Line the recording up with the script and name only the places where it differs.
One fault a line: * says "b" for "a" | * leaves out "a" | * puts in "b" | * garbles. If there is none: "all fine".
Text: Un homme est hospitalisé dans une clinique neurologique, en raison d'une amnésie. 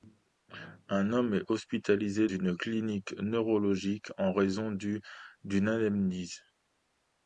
* leaves out "dans"